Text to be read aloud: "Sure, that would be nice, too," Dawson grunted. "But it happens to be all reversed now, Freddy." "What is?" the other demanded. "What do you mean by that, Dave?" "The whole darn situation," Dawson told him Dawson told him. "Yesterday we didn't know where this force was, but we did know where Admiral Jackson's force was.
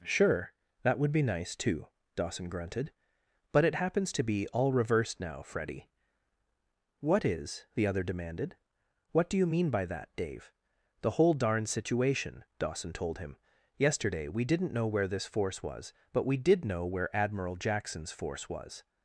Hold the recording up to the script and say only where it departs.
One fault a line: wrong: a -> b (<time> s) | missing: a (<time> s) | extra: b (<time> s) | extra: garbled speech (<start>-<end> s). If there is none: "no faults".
missing: Dawson told him (13.3 s)